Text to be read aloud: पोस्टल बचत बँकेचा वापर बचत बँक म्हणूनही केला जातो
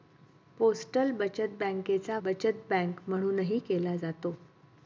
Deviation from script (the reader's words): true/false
true